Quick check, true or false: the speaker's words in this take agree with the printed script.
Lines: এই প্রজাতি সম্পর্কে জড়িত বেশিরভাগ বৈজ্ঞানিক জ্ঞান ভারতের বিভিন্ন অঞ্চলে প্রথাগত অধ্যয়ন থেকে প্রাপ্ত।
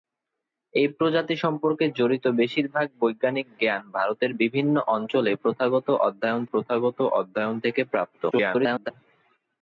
false